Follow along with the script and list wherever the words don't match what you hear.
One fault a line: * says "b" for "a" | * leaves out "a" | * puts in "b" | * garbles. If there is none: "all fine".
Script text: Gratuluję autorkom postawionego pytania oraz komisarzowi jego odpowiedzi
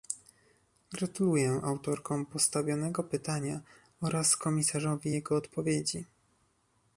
all fine